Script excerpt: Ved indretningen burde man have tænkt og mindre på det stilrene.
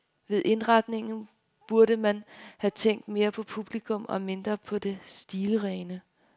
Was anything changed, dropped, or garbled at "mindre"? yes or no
no